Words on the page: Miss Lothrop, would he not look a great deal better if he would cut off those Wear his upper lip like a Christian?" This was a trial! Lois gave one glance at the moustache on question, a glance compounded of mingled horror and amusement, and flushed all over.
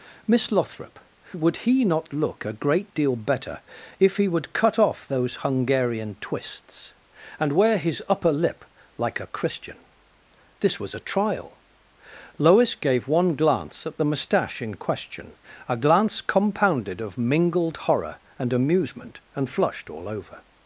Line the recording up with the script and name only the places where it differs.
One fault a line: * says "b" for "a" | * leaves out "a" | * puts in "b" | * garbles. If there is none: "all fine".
* puts in "Hungarian twists and"
* says "in" for "on"